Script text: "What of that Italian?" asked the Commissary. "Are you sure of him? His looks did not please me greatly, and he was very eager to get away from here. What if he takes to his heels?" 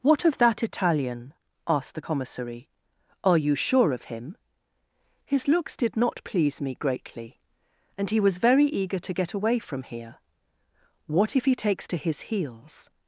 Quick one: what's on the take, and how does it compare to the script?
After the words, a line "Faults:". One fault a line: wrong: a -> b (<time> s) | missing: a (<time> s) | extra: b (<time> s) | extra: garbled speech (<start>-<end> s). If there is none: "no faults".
"What of that Italian?" asked the Commissary. "Are you sure of him? His looks did not please me greatly, and he was very eager to get away from here. What if he takes to his heels?"
Faults:
no faults